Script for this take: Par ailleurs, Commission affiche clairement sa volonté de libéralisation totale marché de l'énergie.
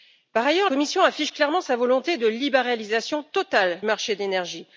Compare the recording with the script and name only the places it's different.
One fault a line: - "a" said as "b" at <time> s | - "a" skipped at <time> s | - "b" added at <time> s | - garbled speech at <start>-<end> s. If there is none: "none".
none